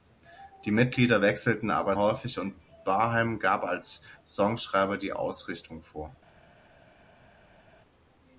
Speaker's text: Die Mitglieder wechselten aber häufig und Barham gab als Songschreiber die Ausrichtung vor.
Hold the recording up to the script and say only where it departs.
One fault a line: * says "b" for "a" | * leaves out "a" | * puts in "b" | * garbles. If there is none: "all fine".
all fine